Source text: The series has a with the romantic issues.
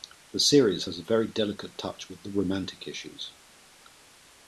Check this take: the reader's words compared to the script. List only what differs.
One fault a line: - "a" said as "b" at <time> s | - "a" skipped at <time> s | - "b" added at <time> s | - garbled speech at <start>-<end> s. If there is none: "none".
- "very delicate touch" added at 1.0 s